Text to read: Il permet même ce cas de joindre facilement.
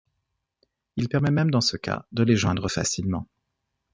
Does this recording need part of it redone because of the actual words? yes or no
yes